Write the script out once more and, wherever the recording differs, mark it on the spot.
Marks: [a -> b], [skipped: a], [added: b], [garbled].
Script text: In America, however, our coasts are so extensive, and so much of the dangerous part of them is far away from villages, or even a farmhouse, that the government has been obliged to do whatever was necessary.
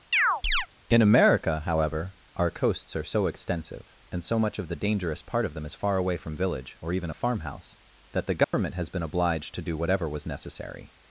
In America, however, our coasts are so extensive, and so much of the dangerous part of them is far away from [villages, -> village] or even a farmhouse, that the government has been obliged to do whatever was necessary.